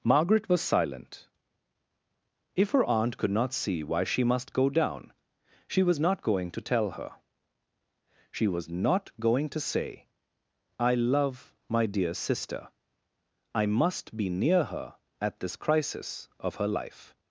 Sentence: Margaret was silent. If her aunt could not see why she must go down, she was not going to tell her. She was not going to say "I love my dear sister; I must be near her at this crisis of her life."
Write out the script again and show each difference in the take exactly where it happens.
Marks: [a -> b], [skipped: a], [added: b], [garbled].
Margaret was silent. If her aunt could not see why she must go down, she was not going to tell her. She was not going to say "I love my dear sister; I must be near her at this crisis of her life."